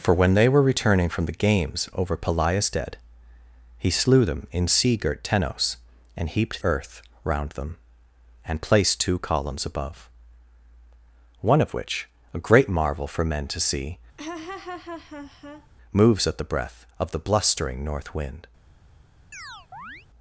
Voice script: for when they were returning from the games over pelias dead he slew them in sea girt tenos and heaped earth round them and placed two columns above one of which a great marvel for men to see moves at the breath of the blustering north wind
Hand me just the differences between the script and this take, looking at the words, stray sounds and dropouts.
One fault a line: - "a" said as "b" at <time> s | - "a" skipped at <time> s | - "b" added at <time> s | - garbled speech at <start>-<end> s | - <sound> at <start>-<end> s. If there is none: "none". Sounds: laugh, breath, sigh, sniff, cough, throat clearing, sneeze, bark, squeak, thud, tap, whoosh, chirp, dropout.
- laugh at 14.2-15.7 s
- chirp at 19.3-20.1 s